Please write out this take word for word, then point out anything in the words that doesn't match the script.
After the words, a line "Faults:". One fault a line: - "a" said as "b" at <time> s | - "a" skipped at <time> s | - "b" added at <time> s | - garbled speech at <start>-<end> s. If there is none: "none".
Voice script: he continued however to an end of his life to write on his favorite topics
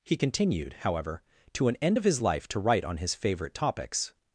he continued however to an end of his life to write on his favorite topics
Faults:
none